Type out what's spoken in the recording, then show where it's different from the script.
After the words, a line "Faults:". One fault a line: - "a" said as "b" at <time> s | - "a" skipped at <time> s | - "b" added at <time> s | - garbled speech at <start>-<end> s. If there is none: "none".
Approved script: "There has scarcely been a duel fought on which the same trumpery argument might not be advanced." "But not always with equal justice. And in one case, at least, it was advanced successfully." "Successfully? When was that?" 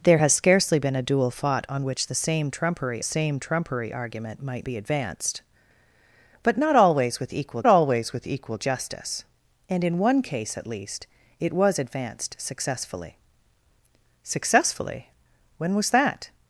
"There has scarcely been a duel fought on which the same trumpery same trumpery argument might be advanced." "But not always with equal always with equal justice. And in one case, at least, it was advanced successfully." "Successfully? When was that?"
Faults:
- "same trumpery" added at 3.0 s
- "not" skipped at 4.7 s
- "always with equal" added at 7.7 s